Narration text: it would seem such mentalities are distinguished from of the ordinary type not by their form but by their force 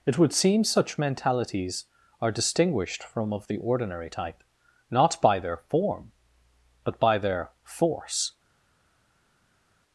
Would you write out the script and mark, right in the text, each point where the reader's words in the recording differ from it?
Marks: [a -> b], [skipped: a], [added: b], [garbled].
it would seem such mentalities are distinguished from of the ordinary type not by their form but by their force